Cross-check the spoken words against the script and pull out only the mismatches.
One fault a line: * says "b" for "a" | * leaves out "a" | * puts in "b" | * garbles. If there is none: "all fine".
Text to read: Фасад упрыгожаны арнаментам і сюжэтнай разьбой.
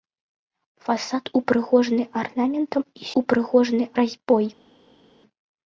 * says "упрыгожаны" for "сюжэтнай"